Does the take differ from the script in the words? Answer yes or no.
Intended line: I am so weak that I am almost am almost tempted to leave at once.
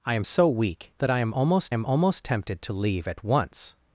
no